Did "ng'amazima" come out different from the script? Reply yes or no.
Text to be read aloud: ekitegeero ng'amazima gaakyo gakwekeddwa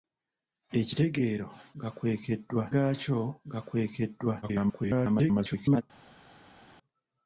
yes